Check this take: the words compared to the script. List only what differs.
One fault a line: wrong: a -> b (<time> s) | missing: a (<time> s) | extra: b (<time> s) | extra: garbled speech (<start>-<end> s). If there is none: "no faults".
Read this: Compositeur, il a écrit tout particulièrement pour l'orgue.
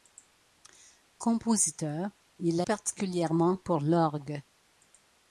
missing: écrit tout (2.7 s)